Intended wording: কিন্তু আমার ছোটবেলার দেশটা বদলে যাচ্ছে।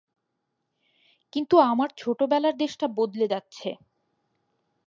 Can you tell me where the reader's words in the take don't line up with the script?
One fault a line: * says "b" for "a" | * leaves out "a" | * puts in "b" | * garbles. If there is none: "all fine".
all fine